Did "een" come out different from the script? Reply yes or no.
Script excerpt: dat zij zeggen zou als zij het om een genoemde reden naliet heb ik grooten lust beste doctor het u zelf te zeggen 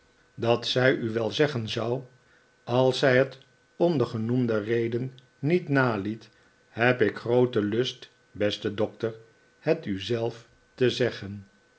yes